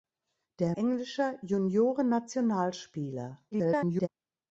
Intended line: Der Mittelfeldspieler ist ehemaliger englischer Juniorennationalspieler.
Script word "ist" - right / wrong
wrong